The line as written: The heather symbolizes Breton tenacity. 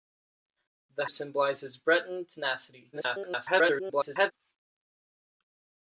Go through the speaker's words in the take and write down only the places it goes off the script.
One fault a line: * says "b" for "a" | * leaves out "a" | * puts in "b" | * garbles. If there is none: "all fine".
* leaves out "heather"
* garbles